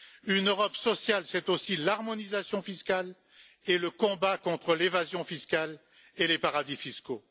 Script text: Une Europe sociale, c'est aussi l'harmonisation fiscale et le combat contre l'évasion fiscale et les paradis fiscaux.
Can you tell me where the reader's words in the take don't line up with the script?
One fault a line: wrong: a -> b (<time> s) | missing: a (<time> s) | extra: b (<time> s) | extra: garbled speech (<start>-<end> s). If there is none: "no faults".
no faults